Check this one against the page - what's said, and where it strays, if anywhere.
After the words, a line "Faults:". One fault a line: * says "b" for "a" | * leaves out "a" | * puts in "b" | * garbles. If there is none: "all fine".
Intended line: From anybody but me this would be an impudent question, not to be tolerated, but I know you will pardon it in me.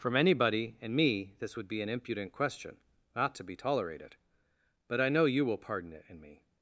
From anybody and me this would be an impudent question, not to be tolerated, but I know you will pardon it in me.
Faults:
* says "and" for "but"